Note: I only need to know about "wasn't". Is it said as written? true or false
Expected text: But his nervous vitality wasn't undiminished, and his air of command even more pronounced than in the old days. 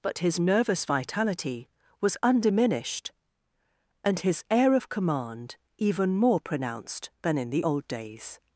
false